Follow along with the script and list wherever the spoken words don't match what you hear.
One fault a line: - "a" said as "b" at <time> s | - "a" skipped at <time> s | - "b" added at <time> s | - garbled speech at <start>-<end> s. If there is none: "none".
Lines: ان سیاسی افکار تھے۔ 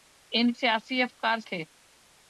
none